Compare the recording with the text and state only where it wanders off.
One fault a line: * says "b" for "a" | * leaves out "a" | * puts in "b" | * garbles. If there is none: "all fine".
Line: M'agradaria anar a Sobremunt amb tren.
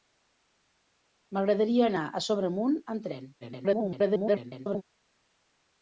* garbles